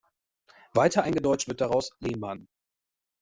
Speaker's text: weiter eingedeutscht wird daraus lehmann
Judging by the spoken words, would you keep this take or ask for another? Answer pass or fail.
pass